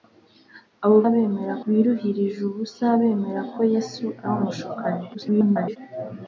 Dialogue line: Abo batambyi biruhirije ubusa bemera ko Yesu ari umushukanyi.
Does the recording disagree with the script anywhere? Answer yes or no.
yes